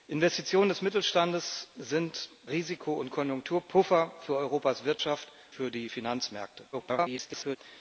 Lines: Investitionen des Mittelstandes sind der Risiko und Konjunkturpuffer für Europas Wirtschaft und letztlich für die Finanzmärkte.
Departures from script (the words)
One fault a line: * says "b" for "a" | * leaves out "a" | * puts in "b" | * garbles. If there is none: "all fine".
* leaves out "der"
* leaves out "und letztlich"
* garbles